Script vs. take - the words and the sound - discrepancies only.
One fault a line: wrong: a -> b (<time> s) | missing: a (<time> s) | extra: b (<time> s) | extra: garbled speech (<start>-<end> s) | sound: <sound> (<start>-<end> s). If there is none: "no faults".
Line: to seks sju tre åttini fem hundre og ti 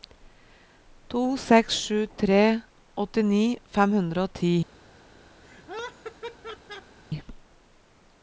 sound: laugh (5.4-7.0 s)